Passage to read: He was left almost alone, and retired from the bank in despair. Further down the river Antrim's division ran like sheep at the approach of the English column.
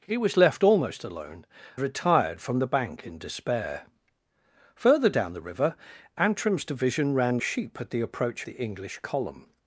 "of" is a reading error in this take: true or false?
true